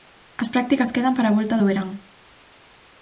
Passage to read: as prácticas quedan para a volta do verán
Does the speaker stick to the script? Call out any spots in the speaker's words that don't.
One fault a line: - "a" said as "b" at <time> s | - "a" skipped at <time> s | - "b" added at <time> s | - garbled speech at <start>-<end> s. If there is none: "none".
none